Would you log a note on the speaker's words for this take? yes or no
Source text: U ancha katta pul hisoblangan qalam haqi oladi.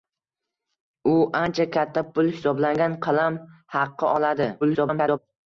yes